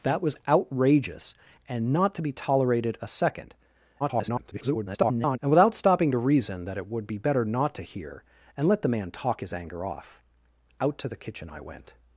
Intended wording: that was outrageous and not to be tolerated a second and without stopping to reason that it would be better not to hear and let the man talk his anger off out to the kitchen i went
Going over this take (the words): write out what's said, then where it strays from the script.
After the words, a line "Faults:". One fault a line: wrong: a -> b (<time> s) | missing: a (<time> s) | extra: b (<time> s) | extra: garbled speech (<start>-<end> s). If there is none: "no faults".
that was outrageous and not to be tolerated a second [garbled] and without stopping to reason that it would be better not to hear and let the man talk his anger off out to the kitchen i went
Faults:
extra: garbled speech (4.0-5.4 s)